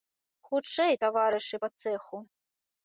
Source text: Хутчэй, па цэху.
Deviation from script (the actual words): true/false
true